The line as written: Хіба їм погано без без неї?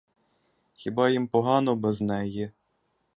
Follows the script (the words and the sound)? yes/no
no